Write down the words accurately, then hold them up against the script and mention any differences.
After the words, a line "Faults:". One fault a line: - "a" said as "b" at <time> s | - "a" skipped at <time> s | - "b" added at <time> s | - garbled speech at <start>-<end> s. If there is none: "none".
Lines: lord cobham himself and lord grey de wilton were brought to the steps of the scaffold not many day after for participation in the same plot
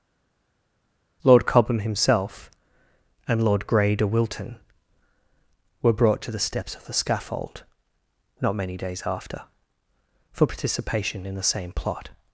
lord cobham himself and lord grey de wilton were brought to the steps of the scaffold not many days after for participation in the same plot
Faults:
- "day" said as "days" at 8.8 s